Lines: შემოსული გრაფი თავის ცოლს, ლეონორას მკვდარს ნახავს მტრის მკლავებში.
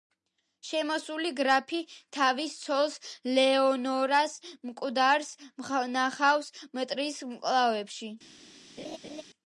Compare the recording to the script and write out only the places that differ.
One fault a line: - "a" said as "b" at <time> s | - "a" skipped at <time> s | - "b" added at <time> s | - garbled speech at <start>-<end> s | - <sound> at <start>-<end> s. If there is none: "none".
- laugh at 8.8-9.2 s